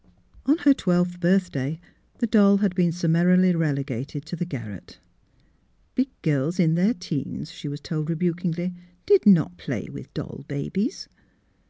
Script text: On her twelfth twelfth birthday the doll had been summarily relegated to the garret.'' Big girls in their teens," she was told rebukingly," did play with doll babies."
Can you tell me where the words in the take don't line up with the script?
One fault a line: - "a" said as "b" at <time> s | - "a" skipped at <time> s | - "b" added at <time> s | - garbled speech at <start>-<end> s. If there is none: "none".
- "twelfth" skipped at 1.2 s
- "not" added at 9.3 s